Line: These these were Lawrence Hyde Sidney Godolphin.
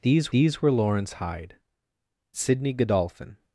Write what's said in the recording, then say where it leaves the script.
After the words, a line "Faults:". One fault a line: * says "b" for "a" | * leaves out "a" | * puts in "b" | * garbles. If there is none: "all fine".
These these were Lawrence Hyde Sidney Godolphin.
Faults:
all fine